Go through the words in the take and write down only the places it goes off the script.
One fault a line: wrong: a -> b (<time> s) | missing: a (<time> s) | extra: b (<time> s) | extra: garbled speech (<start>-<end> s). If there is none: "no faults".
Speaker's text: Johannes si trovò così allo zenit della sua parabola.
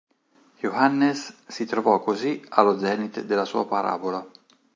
no faults